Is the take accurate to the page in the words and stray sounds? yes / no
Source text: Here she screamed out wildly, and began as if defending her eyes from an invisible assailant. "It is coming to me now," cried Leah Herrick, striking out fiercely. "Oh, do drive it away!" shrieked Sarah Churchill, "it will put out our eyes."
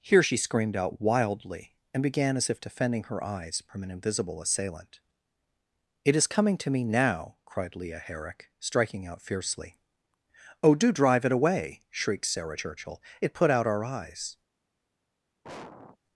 no